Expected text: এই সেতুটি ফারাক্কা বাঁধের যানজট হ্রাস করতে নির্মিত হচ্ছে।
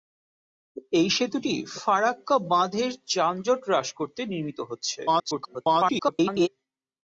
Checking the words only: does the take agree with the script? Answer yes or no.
no